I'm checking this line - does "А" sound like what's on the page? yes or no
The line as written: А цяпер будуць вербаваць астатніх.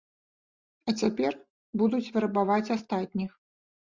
yes